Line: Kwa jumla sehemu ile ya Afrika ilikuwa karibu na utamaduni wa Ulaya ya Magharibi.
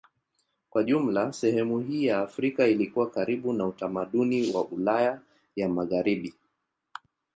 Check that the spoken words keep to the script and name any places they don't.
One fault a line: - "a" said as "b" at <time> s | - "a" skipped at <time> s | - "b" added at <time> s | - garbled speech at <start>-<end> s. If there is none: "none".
- "ile" said as "hii" at 1.8 s